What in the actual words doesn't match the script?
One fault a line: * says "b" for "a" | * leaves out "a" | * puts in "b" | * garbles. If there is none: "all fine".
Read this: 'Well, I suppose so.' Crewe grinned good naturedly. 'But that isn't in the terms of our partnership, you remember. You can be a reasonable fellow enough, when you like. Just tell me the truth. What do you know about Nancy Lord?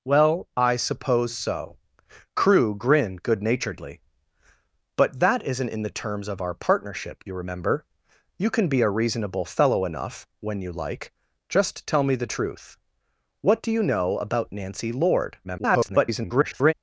* garbles